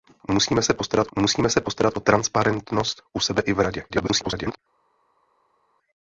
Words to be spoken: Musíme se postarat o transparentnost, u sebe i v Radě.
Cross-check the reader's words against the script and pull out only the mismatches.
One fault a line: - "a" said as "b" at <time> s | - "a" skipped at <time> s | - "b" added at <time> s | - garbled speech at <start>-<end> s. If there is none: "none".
- "musíme se postarat" added at 1.2 s
- garbled speech at 3.9-4.6 s